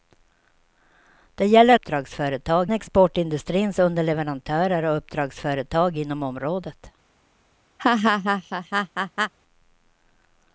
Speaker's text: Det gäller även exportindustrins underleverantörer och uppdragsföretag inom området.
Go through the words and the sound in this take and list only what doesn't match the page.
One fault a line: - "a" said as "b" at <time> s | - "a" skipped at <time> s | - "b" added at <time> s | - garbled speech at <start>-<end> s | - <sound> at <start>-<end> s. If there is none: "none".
- "även" said as "uppdragsföretag" at 1.7 s
- laugh at 7.8-9.3 s